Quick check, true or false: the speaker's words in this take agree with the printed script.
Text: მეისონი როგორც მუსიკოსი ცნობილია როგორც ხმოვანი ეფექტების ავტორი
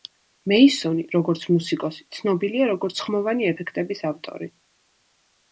true